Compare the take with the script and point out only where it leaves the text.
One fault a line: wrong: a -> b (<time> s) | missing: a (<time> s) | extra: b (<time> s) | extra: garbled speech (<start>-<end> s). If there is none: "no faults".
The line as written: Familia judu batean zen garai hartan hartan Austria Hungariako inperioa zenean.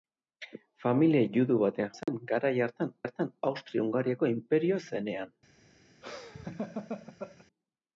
no faults